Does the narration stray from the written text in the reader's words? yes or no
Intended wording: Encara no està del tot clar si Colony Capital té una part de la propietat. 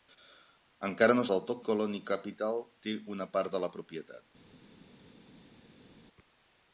yes